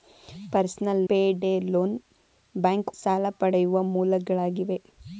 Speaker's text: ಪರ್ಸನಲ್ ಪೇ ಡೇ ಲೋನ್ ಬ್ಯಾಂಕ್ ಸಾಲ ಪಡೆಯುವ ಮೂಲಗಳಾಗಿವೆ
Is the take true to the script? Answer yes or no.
yes